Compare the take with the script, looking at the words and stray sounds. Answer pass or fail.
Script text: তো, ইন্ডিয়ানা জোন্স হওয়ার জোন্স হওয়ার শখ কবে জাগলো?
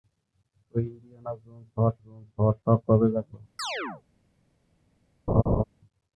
fail